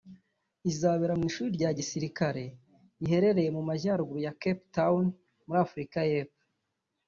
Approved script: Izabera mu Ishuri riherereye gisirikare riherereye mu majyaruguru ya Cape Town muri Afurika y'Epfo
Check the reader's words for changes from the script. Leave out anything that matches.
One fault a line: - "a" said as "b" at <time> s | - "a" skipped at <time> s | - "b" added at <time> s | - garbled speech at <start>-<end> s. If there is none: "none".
- "riherereye" said as "rya" at 1.6 s